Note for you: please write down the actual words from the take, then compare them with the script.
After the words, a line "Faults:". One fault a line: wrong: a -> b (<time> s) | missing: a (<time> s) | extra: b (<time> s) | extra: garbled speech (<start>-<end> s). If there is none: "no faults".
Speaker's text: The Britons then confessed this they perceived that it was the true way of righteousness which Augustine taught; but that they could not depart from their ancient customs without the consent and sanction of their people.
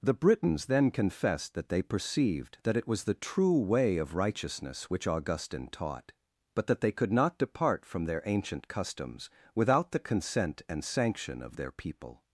The Britons then confessed that they perceived that it was the true way of righteousness which Augustine taught; but that they could not depart from their ancient customs without the consent and sanction of their people.
Faults:
wrong: this -> that (1.5 s)